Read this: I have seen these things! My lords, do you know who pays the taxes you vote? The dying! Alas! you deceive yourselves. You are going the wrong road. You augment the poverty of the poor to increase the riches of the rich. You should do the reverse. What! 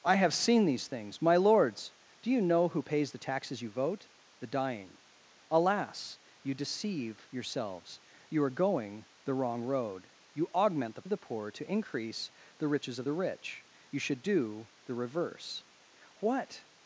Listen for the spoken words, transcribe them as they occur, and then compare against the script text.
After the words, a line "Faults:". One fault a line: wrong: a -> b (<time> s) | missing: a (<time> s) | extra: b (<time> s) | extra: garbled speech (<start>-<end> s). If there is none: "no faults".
I have seen these things! My lords, do you know who pays the taxes you vote? The dying! Alas! you deceive yourselves. You are going the wrong road. You augment the of the poor to increase the riches of the rich. You should do the reverse. What!
Faults:
missing: poverty (11.0 s)